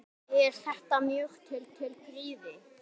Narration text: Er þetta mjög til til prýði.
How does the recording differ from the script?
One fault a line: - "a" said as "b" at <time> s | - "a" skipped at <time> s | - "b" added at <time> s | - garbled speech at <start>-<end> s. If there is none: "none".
none